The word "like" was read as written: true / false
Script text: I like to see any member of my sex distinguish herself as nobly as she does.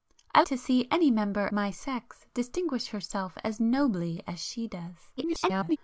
false